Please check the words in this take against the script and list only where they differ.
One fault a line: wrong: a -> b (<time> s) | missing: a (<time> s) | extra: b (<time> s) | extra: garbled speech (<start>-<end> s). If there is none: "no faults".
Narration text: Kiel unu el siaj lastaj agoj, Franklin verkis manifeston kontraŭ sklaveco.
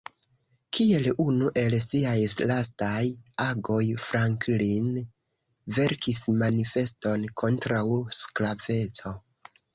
no faults